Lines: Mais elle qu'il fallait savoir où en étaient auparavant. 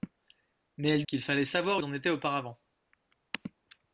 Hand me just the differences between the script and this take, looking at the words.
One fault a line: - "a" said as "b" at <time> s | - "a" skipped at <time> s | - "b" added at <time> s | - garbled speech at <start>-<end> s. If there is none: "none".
none